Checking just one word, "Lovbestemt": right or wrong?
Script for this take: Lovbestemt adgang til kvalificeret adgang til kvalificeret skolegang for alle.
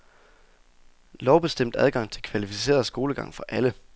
right